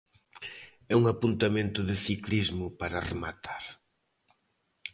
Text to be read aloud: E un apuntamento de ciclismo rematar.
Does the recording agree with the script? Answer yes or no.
no